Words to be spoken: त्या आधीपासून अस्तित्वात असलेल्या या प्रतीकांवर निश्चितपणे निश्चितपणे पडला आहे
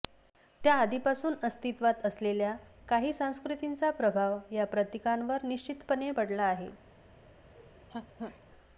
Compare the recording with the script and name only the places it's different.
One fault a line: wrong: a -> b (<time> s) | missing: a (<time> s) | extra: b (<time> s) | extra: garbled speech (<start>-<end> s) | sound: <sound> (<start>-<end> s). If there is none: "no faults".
extra: काही संस्कृतींचा प्रभाव (2.9 s)
missing: निश्चितपणे (6.1 s)
sound: laugh (7.5-8.4 s)